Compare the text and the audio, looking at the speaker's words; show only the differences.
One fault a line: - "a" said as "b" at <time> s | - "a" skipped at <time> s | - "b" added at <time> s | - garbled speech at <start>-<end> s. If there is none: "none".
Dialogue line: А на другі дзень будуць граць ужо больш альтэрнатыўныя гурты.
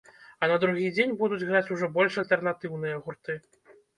none